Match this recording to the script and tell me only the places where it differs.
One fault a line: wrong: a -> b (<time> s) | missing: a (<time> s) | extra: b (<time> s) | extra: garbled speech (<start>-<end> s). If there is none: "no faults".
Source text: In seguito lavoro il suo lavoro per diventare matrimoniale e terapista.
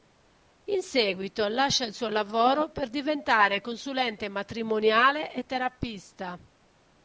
wrong: lavoro -> lascia (1.5 s)
extra: consulente (3.6 s)